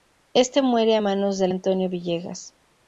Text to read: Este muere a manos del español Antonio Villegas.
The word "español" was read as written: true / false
false